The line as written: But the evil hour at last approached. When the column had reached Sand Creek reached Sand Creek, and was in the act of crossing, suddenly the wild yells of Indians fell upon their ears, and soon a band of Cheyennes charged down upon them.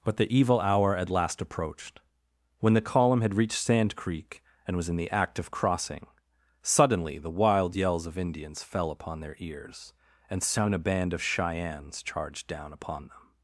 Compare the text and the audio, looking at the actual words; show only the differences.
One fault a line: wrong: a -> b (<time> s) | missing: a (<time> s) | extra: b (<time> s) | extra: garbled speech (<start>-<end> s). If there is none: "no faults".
missing: reached Sand Creek (4.4 s)